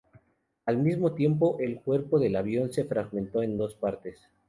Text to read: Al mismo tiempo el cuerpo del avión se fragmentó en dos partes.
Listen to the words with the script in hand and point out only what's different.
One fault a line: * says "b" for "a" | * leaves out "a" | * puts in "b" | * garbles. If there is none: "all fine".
all fine